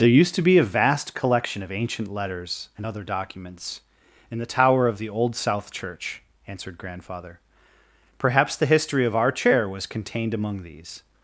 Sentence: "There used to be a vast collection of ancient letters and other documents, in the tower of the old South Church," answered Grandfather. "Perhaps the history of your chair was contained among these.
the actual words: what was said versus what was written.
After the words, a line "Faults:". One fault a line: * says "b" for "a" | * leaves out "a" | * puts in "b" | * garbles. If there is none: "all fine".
"There used to be a vast collection of ancient letters and other documents, in the tower of the old South Church," answered Grandfather. "Perhaps the history of our chair was contained among these.
Faults:
* says "our" for "your"